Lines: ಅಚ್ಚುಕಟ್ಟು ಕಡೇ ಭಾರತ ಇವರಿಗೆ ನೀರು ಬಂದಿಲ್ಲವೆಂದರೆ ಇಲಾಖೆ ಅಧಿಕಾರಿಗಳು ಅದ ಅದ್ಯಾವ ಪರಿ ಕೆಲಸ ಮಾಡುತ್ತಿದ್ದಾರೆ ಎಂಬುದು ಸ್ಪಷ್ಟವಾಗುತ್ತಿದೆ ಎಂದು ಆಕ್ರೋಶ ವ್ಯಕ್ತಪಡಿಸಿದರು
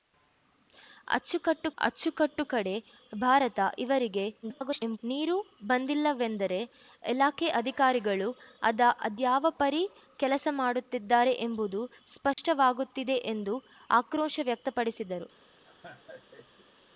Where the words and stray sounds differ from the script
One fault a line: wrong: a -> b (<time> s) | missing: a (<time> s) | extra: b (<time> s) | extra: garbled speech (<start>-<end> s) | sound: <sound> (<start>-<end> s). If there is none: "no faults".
extra: ಅಚ್ಚುಕಟ್ಟು (1.8 s)
extra: garbled speech (4.4-5.0 s)
sound: dropout (12.3-12.4 s)
sound: laugh (15.6-16.7 s)